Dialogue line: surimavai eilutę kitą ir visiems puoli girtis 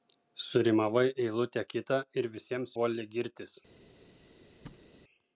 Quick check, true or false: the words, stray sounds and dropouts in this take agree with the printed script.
false